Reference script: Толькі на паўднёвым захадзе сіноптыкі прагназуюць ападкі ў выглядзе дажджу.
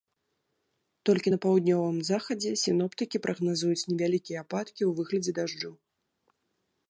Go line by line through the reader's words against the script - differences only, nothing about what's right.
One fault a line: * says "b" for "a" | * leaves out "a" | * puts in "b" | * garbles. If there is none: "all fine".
* puts in "невялікія"